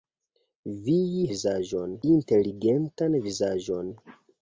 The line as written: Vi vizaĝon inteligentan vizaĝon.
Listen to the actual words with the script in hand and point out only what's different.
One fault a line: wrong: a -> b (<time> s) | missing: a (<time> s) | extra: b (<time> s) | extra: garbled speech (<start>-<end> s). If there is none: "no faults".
no faults